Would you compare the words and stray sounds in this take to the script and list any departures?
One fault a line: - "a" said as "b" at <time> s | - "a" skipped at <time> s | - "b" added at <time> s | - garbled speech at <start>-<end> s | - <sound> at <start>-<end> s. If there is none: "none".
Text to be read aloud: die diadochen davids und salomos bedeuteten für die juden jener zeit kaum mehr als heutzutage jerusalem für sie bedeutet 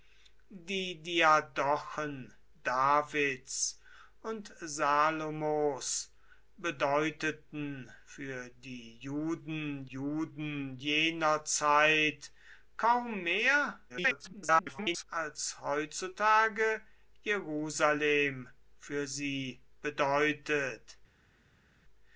- "juden" added at 9.9 s
- garbled speech at 13.9-15.0 s